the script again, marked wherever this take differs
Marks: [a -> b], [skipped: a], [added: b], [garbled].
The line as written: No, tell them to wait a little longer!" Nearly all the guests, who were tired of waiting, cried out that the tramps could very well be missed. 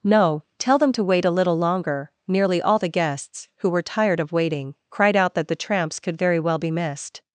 No, tell them to wait a little longer!" Nearly all the guests, who were tired of waiting, cried out that the tramps could very well be missed.